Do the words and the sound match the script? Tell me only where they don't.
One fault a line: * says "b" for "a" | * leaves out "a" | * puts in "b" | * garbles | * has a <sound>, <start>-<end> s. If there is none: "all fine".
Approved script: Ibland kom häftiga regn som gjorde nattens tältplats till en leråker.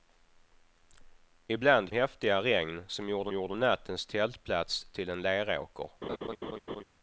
* leaves out "kom"
* puts in "gjorde"
* has a laugh, 6.0-6.8 s